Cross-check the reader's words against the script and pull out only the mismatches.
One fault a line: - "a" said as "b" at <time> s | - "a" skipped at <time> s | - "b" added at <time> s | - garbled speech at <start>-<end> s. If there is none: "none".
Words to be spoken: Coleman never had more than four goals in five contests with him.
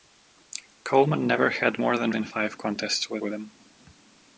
- "four goals" skipped at 2.1 s
- "with" added at 3.2 s